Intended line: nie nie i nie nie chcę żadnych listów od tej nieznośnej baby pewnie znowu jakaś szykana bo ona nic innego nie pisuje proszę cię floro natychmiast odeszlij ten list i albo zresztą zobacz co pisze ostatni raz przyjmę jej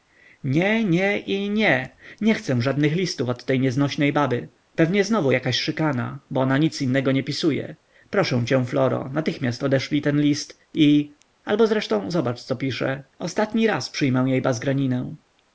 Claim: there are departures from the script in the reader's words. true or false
false